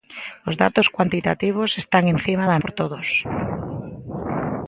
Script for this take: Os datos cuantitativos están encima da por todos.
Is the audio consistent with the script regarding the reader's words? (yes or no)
yes